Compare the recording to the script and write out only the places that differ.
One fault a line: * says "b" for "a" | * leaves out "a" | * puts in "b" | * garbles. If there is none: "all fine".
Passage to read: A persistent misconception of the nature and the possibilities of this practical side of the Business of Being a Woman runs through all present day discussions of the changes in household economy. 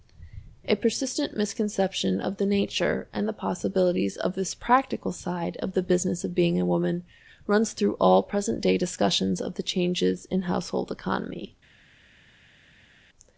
all fine